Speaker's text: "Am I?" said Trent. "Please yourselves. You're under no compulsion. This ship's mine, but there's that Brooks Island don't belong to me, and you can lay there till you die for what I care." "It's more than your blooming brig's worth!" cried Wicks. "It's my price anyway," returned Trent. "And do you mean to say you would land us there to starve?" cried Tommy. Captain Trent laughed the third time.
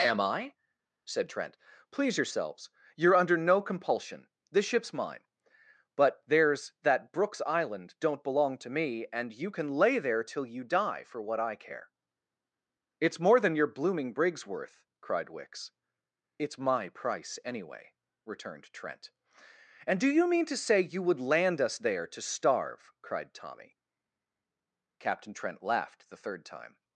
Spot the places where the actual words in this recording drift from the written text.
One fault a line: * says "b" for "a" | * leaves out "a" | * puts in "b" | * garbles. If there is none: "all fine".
all fine